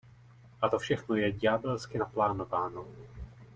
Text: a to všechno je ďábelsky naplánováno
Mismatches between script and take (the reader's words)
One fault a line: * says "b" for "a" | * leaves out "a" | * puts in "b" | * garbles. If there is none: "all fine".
all fine